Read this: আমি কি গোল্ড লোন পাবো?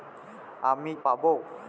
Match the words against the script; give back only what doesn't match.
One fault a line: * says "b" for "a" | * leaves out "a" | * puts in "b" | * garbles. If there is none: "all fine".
* leaves out "কি গোল্ড লোন"